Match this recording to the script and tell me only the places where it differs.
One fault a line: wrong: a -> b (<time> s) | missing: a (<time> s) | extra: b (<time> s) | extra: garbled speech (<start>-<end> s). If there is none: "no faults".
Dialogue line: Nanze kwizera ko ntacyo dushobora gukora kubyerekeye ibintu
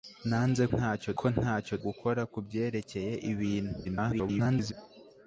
wrong: kwizera -> ntacyo (0.7 s)
missing: dushobora (1.7 s)
extra: garbled speech (3.8-4.7 s)